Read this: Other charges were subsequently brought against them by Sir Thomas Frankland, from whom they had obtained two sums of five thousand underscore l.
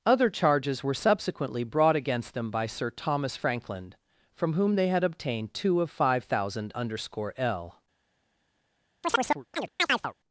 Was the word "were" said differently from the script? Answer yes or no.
no